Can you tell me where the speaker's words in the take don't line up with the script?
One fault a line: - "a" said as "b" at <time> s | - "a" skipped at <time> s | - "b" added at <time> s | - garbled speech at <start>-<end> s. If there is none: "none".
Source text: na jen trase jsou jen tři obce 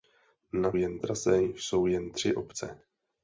none